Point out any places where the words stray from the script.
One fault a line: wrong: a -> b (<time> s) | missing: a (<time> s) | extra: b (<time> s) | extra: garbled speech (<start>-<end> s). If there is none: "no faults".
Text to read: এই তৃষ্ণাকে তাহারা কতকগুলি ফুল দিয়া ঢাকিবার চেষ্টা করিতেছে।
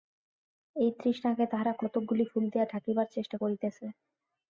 no faults